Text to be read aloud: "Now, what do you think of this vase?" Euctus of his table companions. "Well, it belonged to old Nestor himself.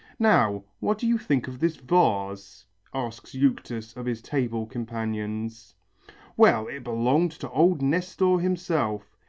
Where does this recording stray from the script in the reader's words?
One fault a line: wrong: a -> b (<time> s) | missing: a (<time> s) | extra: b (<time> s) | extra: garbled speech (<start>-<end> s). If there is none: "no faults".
extra: asks (2.9 s)